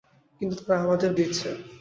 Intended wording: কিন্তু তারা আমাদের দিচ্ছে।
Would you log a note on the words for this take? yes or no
no